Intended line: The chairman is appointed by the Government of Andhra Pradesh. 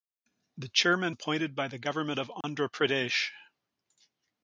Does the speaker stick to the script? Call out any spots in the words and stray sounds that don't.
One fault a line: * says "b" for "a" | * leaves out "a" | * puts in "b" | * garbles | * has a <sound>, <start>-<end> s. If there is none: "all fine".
* leaves out "is"
* has a dropout, 2.4-2.4 s